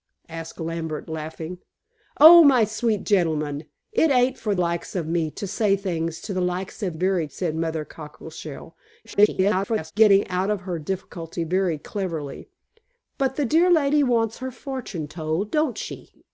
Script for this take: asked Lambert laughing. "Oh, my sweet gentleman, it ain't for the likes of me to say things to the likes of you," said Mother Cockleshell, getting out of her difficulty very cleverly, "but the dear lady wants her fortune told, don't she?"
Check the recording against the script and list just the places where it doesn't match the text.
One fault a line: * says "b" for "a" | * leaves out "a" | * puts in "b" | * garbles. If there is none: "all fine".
* leaves out "the"
* says "very" for "you"
* garbles